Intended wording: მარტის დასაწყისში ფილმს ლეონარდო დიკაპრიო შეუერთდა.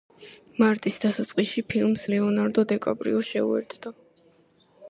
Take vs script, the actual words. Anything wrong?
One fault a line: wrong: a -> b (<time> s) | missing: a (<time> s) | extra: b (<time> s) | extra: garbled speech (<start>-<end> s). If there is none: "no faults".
no faults